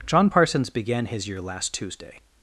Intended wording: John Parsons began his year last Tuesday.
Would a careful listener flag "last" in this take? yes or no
no